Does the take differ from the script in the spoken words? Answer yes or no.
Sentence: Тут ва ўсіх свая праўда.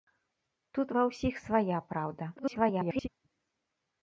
yes